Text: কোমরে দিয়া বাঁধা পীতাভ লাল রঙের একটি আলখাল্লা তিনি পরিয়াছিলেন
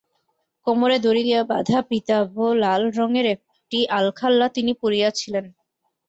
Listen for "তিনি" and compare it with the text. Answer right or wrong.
right